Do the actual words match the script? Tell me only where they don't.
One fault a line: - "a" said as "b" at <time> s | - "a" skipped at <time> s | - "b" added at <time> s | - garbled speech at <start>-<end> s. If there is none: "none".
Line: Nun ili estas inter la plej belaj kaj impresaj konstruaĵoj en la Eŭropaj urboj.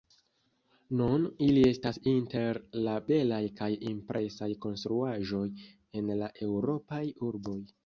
- "plej" skipped at 3.0 s